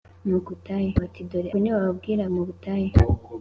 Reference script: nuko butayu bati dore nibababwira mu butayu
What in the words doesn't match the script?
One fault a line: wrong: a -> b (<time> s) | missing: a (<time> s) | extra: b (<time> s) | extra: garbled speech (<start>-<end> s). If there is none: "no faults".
no faults